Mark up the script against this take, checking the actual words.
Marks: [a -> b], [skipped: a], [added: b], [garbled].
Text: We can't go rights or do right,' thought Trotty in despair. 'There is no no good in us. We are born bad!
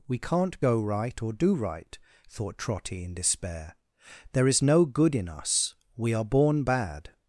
We can't go [rights -> right] or do right,' thought Trotty in despair. 'There is no [skipped: no] good in us. We are born bad!